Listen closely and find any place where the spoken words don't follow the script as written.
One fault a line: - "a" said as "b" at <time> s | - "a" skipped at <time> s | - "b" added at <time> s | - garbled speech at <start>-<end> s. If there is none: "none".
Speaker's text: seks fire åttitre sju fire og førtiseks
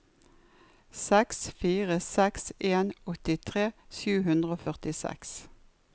- "seks en" added at 2.0 s
- "fire" said as "hundre" at 4.3 s